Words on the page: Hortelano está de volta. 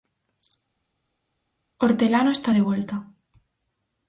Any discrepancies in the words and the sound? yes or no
no